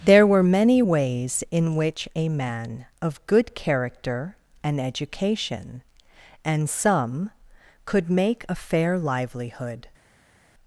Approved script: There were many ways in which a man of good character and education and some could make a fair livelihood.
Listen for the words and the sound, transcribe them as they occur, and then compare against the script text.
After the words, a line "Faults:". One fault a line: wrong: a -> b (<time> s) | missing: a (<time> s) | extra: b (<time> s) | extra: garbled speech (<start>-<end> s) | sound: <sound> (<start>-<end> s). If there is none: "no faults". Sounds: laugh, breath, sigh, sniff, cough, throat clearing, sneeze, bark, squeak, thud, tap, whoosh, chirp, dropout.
There were many ways in which a man of good character and education and some could make a fair livelihood.
Faults:
no faults